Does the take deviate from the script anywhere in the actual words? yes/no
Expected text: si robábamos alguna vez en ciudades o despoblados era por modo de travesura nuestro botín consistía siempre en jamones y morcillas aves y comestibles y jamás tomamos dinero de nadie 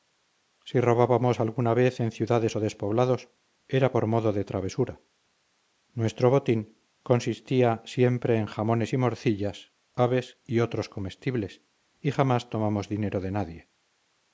yes